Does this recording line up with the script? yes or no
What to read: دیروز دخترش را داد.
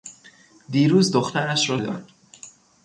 yes